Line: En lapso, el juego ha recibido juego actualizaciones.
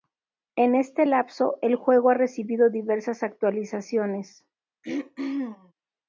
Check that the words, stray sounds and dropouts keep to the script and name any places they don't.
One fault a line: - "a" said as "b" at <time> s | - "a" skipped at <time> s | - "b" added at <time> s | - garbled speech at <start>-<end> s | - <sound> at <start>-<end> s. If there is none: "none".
- "este" added at 0.7 s
- "juego" said as "diversas" at 2.7 s
- throat clearing at 4.8-5.7 s